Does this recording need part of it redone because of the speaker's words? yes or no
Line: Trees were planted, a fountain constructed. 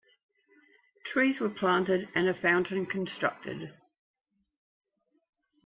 yes